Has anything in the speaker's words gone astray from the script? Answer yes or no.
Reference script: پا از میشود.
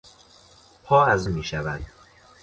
no